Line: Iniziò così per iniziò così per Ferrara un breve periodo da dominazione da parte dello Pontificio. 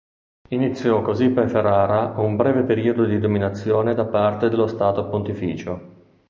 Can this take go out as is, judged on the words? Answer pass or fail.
fail